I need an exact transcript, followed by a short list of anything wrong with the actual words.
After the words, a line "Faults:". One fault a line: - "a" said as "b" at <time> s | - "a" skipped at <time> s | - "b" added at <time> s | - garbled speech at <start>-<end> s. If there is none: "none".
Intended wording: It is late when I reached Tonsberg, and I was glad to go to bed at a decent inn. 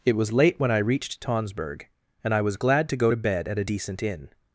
It was late when I reached Tonsberg, and I was glad to go to bed at a decent inn.
Faults:
- "is" said as "was" at 0.1 s